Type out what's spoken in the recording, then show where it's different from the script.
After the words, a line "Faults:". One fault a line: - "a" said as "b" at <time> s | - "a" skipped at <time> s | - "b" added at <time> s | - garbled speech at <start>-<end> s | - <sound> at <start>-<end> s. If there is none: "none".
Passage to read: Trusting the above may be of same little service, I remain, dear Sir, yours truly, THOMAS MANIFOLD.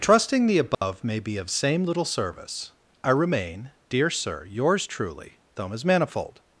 Trusting the above may be of same little service, I remain, dear Sir, yours truly, THOMAS MANIFOLD.
Faults:
- dropout at 0.7-0.8 s